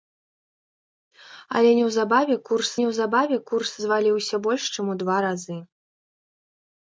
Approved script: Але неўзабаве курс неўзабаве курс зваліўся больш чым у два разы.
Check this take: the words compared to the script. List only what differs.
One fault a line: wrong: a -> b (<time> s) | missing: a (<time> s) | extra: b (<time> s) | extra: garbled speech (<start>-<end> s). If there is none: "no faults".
no faults